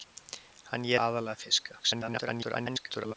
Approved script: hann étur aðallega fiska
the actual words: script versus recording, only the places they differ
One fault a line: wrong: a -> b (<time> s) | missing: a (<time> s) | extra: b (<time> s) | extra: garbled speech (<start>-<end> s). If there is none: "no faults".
missing: étur (0.9 s)
extra: garbled speech (1.8-3.1 s)